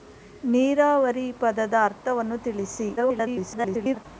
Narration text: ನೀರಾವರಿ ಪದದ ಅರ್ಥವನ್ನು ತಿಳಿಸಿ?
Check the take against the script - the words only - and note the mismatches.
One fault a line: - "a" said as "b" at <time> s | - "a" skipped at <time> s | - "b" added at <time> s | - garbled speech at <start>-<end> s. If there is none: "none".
- garbled speech at 3.0-4.1 s